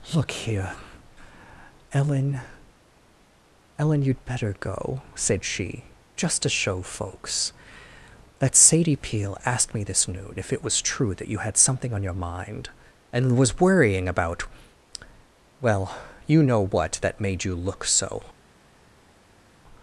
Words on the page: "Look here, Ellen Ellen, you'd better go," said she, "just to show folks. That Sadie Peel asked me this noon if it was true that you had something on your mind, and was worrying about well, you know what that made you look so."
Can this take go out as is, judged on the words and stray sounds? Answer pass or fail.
pass